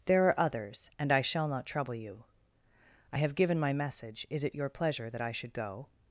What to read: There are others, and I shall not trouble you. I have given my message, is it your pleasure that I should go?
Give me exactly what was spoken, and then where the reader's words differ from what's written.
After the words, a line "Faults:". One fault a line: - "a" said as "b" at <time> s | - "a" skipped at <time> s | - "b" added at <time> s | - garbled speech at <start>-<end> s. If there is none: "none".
There are others, and I shall not trouble you. I have given my message, is it your pleasure that I should go?
Faults:
none